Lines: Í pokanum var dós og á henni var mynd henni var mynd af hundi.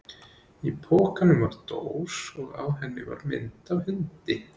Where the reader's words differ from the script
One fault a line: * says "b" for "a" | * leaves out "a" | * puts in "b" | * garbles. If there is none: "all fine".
* leaves out "henni var mynd"